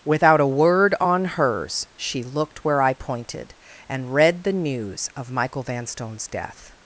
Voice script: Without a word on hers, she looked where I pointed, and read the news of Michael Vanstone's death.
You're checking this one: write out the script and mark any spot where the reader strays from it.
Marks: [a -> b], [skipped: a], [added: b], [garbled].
Without a word on hers, she looked where I pointed, and read the news of Michael Vanstone's death.